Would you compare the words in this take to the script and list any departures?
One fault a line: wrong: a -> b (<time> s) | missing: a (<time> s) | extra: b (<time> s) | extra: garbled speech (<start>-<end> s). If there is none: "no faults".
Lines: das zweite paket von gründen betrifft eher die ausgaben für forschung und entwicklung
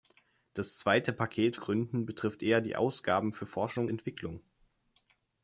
missing: von (1.6 s)
missing: und (3.9 s)